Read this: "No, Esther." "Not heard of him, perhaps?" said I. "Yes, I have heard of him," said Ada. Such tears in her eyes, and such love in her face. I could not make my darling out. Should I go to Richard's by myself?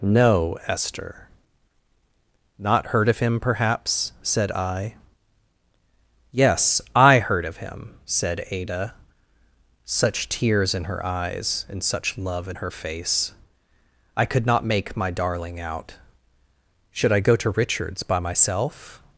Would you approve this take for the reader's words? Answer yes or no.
no